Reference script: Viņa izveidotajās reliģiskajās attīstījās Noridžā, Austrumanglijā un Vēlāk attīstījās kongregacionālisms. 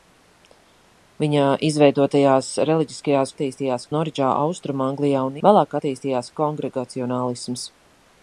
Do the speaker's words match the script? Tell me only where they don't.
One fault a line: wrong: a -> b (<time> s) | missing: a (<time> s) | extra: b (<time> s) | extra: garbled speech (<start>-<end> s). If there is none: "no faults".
no faults